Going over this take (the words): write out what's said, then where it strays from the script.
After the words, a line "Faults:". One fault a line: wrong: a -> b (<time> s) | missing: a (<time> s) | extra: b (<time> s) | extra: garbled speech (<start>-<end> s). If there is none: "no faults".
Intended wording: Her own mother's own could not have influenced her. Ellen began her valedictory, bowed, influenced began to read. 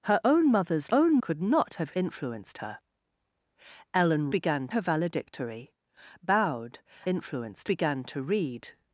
Her own mother's own could not have influenced her. Ellen began her valedictory, bowed, influenced began to read.
Faults:
no faults